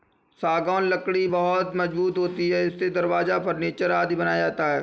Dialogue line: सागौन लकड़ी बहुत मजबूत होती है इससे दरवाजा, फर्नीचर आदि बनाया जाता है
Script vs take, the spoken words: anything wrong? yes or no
no